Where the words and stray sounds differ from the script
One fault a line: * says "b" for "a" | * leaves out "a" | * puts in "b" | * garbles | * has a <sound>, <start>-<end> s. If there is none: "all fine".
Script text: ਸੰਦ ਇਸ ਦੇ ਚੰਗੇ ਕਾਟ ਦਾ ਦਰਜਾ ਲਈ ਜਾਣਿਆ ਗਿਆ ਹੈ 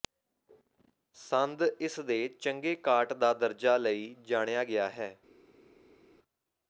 all fine